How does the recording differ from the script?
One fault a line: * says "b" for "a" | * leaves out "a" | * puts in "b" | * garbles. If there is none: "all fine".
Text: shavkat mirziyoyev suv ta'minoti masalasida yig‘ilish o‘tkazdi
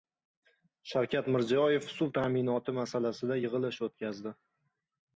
all fine